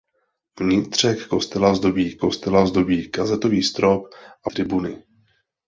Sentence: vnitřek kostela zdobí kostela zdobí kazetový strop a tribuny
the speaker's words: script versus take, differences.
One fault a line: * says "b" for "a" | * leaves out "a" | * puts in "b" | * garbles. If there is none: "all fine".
all fine